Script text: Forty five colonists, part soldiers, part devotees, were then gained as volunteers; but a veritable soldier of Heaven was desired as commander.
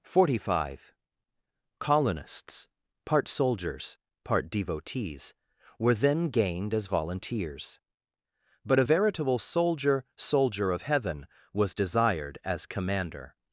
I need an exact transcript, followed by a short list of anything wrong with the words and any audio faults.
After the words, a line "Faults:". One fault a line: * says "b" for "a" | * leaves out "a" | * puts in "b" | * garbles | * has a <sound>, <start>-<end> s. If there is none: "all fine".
Forty five colonists, part soldiers, part devotees, were then gained as volunteers; but a veritable soldier soldier of Heaven was desired as commander.
Faults:
* puts in "soldier"